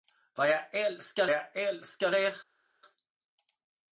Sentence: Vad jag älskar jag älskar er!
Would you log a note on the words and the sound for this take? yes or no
no